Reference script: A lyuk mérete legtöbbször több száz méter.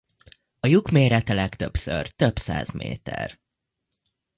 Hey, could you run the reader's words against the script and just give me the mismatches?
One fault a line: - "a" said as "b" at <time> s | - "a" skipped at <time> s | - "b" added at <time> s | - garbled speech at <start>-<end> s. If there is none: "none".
none